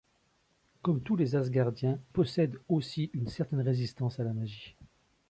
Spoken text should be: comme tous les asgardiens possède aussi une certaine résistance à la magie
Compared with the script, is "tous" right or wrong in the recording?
right